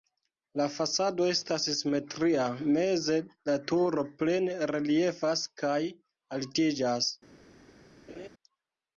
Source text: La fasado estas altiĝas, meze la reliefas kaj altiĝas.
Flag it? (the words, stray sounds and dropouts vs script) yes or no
yes